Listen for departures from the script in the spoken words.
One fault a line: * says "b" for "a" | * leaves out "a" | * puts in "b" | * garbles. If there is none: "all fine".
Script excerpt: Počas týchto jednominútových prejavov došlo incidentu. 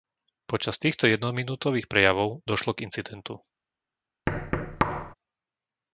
* puts in "k"